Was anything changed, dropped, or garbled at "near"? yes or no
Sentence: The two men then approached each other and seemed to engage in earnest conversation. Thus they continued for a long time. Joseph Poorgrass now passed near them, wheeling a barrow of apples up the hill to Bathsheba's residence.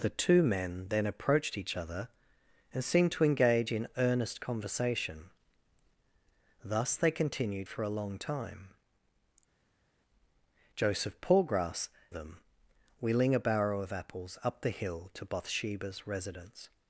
yes